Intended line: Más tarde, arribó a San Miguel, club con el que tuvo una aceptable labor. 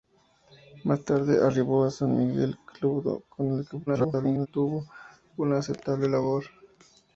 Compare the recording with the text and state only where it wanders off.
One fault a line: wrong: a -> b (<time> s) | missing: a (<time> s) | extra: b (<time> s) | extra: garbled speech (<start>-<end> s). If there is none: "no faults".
extra: garbled speech (3.9-4.5 s)